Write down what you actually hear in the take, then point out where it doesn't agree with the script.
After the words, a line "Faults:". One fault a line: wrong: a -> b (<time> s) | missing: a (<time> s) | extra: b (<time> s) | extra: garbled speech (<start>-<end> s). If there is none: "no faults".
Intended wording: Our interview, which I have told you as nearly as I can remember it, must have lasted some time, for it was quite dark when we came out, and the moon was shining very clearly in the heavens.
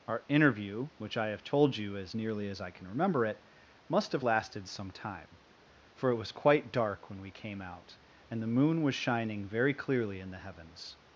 Our interview, which I have told you as nearly as I can remember it, must have lasted some time, for it was quite dark when we came out, and the moon was shining very clearly in the heavens.
Faults:
no faults